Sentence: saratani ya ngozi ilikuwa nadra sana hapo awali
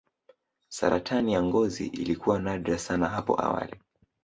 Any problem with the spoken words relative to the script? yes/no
no